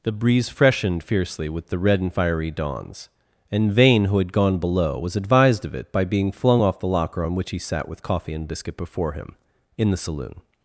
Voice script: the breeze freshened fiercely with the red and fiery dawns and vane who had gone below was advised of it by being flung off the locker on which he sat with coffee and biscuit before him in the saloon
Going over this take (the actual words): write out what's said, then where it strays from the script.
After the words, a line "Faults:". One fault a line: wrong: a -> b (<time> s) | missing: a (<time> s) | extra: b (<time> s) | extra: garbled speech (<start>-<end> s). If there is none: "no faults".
the breeze freshened fiercely with the red and fiery dawns and vane who had gone below was advised of it by being flung off the locker on which he sat with coffee and biscuit before him in the saloon
Faults:
no faults